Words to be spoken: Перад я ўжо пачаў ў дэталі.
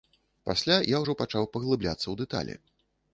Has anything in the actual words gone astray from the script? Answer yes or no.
yes